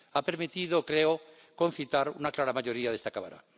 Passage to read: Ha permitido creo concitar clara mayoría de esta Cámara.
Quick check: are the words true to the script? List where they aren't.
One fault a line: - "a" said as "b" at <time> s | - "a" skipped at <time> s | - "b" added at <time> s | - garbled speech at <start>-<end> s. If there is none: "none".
- "una" added at 2.1 s